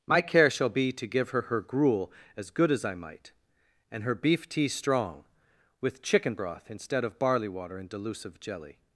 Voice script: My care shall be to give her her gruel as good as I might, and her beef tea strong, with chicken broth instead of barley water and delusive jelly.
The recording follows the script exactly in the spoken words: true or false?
true